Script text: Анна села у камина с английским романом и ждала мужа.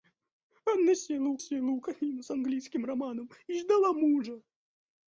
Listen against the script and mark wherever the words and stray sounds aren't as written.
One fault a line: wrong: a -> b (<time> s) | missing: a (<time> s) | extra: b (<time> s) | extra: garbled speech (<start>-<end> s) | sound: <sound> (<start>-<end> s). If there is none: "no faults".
extra: села у (1.4 s)